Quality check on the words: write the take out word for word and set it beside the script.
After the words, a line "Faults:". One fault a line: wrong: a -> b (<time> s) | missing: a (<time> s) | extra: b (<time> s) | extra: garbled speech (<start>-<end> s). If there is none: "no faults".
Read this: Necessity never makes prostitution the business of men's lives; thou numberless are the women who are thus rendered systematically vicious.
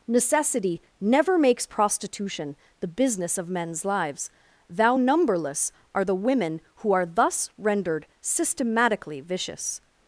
Necessity never makes prostitution the business of men's lives; thou numberless are the women who are thus rendered systematically vicious.
Faults:
no faults